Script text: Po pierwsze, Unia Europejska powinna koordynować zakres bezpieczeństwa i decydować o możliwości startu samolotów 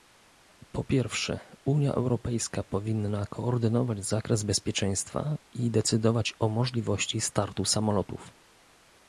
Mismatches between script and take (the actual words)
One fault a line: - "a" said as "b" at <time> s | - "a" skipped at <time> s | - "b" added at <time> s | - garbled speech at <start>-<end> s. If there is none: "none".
none